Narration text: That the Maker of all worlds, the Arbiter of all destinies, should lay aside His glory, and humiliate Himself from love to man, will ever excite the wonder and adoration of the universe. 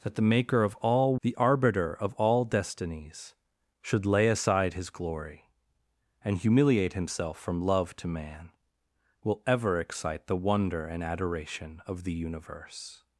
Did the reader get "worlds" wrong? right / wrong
wrong